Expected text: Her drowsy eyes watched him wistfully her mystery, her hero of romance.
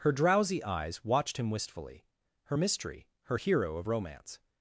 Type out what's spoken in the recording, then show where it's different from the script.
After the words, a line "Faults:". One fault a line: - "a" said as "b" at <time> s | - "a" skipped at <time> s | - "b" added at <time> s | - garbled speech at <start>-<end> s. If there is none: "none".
Her drowsy eyes watched him wistfully her mystery, her hero of romance.
Faults:
none